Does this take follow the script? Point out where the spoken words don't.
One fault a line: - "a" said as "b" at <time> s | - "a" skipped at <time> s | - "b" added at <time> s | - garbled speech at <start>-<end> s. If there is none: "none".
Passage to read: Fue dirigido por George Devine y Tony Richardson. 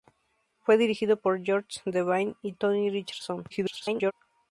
- garbled speech at 3.5-4.1 s